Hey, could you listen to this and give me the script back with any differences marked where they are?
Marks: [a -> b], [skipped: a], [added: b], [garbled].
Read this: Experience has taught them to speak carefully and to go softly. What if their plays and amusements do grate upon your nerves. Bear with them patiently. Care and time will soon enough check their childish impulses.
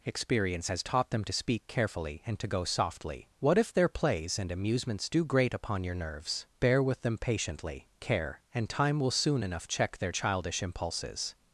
Experience has taught them to speak carefully and to go softly. What if their plays and amusements do grate upon your nerves. Bear with them patiently. Care and time will soon enough check their childish impulses.